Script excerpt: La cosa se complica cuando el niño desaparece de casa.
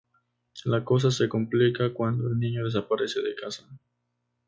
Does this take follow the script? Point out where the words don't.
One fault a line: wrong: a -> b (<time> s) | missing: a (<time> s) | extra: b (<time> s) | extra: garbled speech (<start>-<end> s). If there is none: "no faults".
no faults